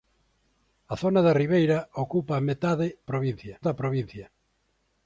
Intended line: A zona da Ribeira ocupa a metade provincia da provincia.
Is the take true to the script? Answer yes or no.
yes